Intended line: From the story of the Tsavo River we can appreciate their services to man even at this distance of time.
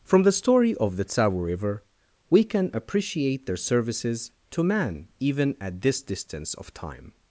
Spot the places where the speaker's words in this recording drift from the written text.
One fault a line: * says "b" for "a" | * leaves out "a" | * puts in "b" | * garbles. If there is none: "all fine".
all fine